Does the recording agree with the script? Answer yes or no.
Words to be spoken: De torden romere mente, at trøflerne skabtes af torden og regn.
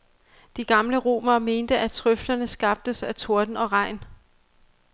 no